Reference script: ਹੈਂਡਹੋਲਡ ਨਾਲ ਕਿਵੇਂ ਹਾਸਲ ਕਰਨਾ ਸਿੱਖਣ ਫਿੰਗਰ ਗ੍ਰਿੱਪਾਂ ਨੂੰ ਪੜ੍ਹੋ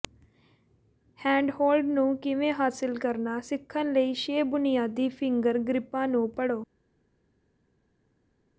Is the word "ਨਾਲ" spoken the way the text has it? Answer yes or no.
no